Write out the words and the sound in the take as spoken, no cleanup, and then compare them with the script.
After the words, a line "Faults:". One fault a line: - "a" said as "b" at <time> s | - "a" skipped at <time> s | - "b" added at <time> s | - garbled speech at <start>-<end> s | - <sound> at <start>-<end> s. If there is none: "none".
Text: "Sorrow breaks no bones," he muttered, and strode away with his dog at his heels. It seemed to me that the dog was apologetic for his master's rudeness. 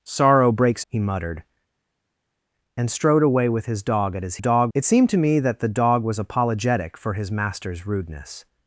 "Sorrow breaks," he muttered, and strode away with his dog at his dog. It seemed to me that the dog was apologetic for his master's rudeness.
Faults:
- "no bones" skipped at 0.8 s
- "heels" said as "dog" at 4.4 s